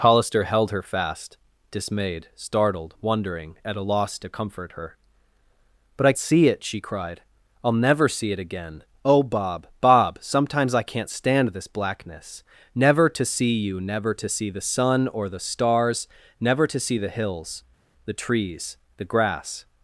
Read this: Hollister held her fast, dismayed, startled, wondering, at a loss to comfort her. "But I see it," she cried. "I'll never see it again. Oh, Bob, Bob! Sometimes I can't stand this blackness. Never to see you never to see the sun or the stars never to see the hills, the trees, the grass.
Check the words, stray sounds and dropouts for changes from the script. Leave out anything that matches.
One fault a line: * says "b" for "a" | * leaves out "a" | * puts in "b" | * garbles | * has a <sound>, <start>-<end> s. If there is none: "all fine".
all fine